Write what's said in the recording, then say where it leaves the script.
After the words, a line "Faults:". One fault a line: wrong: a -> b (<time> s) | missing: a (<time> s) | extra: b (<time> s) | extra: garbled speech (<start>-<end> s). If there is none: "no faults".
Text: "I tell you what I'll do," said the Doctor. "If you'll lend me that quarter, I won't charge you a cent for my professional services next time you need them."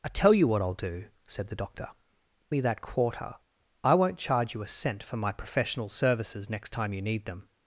"I tell you what I'll do," said the Doctor. "Me that quarter, I won't charge you a cent for my professional services next time you need them."
Faults:
missing: If you'll lend (1.9 s)